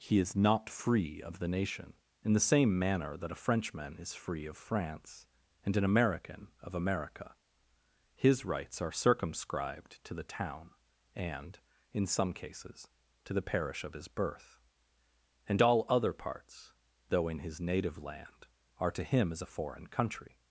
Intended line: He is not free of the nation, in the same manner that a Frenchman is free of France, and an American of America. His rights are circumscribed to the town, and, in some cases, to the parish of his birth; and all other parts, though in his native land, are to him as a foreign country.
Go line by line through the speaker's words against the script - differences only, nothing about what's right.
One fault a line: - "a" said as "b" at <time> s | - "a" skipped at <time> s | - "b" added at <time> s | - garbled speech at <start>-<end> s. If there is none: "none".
none